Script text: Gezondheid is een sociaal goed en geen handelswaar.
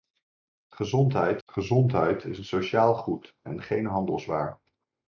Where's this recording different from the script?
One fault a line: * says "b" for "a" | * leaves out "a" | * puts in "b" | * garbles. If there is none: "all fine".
* puts in "gezondheid"